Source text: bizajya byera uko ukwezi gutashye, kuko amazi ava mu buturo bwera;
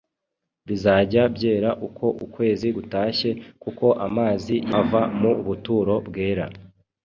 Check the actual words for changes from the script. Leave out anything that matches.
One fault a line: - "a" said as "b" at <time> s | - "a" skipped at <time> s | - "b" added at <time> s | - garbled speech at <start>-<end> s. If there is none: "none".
none